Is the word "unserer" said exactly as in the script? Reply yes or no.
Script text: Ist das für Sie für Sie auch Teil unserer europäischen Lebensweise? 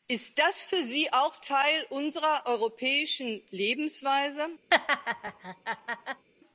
yes